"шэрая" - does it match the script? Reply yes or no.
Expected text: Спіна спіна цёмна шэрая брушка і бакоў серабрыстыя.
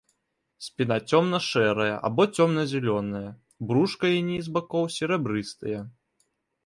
no